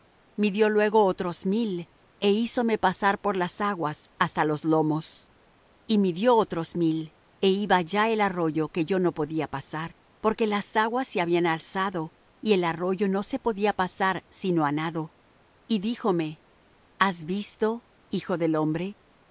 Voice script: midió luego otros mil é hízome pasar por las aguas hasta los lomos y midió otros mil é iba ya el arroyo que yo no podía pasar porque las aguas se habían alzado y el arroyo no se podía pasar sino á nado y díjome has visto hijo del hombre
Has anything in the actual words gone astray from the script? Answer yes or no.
no